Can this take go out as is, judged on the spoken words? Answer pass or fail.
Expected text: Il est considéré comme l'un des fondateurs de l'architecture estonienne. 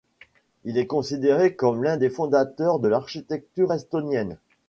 pass